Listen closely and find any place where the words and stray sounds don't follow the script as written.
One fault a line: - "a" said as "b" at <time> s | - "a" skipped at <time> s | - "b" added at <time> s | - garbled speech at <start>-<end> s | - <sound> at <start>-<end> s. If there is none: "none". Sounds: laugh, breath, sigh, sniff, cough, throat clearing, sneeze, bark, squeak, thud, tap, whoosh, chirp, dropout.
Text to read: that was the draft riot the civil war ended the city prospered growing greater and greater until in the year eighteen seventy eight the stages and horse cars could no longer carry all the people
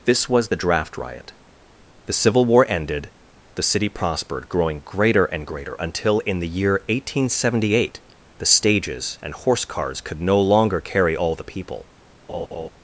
- "that" said as "this" at 0.1 s
- laugh at 12.3-12.7 s